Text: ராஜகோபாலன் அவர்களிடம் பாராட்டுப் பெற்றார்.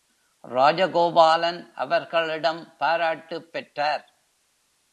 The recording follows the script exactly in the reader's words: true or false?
true